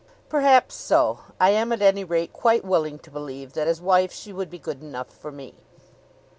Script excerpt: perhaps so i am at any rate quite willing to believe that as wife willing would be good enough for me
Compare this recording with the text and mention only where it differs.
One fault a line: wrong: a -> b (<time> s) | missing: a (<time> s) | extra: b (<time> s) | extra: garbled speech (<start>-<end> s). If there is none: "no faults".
wrong: willing -> she (4.1 s)